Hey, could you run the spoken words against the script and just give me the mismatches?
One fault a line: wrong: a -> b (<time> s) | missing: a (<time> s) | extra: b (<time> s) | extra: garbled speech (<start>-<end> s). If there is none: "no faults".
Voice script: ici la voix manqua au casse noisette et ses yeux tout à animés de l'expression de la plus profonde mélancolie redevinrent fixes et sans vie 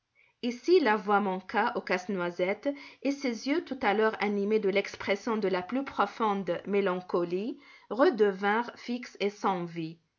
extra: l'heure (3.9 s)